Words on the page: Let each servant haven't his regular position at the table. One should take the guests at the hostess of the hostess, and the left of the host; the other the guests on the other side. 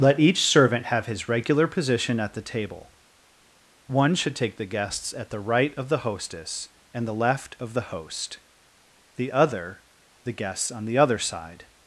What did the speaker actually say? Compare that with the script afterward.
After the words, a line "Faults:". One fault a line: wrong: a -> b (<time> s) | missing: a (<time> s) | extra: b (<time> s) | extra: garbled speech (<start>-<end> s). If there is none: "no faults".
Let each servant have his regular position at the table. One should take the guests at the right of the hostess, and the left of the host; the other the guests on the other side.
Faults:
wrong: haven't -> have (0.9 s)
wrong: hostess -> right (5.4 s)